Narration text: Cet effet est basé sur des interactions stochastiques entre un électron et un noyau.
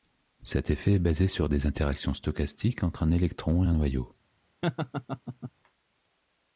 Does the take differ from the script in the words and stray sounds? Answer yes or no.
yes